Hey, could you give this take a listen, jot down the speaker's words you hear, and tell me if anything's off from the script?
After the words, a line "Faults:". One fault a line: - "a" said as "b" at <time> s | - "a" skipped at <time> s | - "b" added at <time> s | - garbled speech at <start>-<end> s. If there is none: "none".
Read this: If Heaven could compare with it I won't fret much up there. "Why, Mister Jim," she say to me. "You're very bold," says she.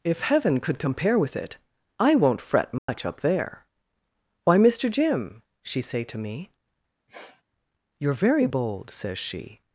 If Heaven could compare with it I won't fret much up there. "Why, Mister Jim," she say to me. "You're very bold," says she.
Faults:
none